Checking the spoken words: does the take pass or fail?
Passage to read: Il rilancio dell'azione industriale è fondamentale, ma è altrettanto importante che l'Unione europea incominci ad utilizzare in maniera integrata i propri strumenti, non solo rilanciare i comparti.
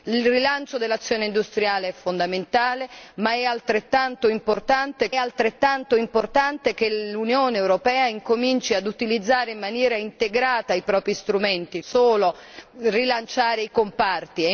fail